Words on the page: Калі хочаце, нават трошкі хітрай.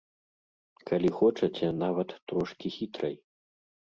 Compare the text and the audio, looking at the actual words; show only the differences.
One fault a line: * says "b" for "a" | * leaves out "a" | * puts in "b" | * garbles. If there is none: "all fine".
all fine